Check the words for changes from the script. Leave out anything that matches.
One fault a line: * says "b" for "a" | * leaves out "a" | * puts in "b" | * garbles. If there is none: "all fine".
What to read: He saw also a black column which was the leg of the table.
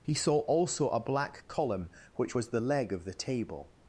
all fine